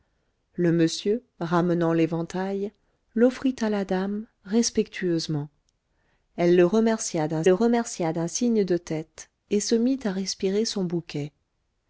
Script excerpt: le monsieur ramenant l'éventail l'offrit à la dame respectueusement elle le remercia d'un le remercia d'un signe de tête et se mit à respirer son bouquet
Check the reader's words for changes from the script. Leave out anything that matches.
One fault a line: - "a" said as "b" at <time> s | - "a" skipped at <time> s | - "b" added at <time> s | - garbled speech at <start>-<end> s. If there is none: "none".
none